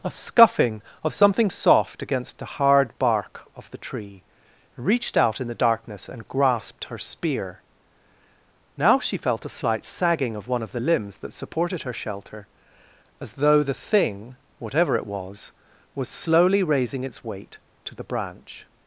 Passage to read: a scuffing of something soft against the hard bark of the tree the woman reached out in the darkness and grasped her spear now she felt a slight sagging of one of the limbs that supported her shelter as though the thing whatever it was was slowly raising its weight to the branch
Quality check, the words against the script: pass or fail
fail